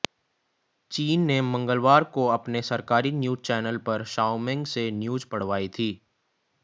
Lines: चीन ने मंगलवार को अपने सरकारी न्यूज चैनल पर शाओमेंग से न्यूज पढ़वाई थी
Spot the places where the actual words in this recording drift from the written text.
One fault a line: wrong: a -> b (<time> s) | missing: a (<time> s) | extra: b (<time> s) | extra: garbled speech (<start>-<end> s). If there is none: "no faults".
no faults